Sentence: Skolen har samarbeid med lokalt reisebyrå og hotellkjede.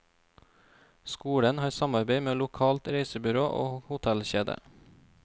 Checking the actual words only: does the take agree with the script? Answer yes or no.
yes